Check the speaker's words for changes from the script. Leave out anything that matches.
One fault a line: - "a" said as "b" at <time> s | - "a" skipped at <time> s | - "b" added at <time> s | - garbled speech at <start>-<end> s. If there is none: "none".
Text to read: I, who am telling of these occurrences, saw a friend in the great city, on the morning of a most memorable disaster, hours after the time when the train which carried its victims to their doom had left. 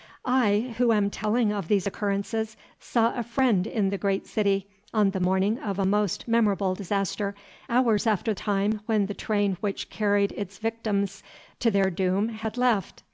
- "the" skipped at 8.3 s